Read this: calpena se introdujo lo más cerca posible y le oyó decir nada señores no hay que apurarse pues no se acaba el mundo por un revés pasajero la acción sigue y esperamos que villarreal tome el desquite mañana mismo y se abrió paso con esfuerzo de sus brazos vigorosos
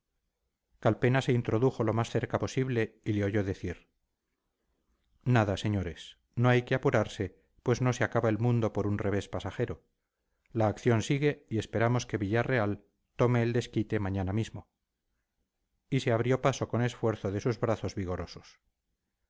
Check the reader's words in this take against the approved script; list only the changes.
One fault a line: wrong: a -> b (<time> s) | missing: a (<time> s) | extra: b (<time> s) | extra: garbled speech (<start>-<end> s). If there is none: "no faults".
no faults